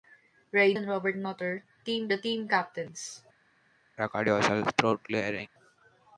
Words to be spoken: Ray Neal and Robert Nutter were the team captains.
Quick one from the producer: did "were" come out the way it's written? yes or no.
no